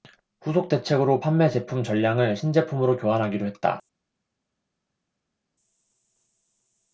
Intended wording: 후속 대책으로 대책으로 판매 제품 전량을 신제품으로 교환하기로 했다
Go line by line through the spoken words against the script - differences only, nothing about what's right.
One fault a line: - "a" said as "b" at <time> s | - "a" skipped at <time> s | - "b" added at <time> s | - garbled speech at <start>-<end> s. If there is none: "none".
- "대책으로" skipped at 1.2 s